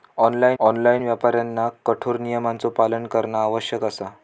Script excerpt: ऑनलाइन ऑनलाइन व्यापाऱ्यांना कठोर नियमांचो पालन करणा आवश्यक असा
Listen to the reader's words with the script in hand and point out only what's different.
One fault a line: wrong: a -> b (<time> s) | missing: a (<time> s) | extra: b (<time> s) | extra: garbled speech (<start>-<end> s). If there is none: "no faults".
no faults